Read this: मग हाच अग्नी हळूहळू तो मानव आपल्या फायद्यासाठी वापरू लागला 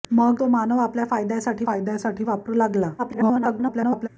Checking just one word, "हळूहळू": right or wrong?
wrong